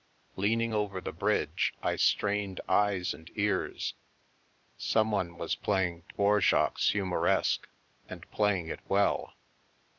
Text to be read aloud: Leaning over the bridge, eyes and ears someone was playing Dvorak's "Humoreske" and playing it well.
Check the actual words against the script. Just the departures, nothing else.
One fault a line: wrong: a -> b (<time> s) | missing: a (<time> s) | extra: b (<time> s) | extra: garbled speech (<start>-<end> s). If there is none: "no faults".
extra: I strained (1.8 s)